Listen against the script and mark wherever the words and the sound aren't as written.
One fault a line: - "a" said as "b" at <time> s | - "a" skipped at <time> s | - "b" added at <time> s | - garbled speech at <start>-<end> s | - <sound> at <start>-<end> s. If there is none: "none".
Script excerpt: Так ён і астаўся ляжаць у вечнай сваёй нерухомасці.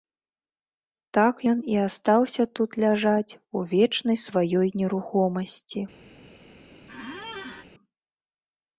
- "тут" added at 2.6 s
- squeak at 6.9-7.7 s